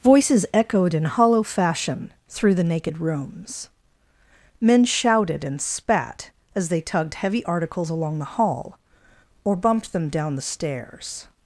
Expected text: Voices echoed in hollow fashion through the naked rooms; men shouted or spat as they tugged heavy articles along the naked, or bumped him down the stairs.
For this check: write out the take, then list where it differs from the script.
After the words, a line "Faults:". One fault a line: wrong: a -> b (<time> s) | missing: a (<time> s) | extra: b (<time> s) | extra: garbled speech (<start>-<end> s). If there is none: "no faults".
Voices echoed in hollow fashion through the naked rooms; men shouted and spat as they tugged heavy articles along the hall, or bumped them down the stairs.
Faults:
wrong: or -> and (5.4 s)
wrong: naked -> hall (8.2 s)
wrong: him -> them (9.9 s)